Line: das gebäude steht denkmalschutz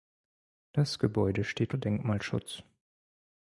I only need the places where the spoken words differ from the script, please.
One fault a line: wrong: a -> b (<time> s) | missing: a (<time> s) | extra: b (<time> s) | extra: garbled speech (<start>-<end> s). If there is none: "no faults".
no faults